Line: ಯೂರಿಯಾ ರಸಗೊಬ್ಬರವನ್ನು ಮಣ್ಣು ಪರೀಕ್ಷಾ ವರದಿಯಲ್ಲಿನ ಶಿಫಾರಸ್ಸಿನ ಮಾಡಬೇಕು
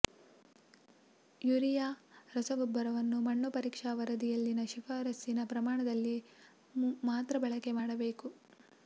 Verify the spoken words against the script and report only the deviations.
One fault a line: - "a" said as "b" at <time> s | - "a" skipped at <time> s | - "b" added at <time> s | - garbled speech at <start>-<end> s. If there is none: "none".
- "ಪ್ರಮಾಣದಲ್ಲಿ ಮಾತ್ರ ಬಳಕೆ" added at 5.5 s